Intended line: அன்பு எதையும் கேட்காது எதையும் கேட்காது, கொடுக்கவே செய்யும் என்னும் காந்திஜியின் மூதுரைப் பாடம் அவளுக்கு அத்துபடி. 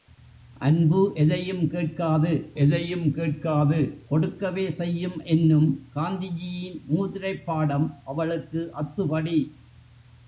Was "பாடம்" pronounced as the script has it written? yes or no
yes